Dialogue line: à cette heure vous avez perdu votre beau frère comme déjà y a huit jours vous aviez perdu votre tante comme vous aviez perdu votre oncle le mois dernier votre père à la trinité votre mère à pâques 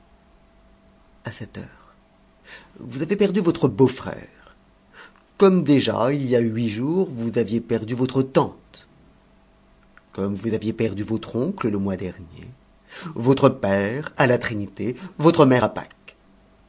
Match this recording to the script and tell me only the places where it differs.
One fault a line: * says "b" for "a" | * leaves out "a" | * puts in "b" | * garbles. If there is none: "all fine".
* puts in "il"